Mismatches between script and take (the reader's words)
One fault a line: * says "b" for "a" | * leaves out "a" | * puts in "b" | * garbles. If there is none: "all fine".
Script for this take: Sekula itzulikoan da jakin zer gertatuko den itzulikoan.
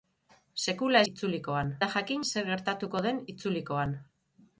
all fine